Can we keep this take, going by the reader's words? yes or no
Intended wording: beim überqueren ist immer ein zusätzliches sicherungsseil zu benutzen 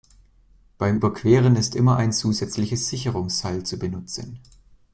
yes